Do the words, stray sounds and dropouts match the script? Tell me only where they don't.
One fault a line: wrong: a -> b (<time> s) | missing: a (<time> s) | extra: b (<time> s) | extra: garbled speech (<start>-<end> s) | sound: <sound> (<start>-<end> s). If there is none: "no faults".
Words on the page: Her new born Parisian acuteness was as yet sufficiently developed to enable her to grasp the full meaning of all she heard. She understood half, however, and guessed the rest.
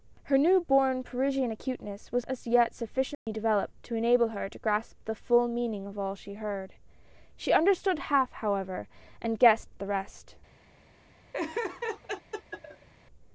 sound: dropout (3.1-3.3 s)
sound: laugh (11.3-12.9 s)